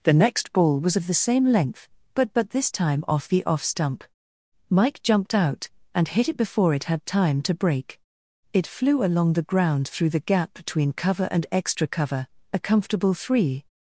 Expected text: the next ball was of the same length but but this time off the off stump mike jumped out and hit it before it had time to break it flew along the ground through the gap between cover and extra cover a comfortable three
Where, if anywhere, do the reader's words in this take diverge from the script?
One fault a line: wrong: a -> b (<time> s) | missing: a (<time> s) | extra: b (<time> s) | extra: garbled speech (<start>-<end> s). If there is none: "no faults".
no faults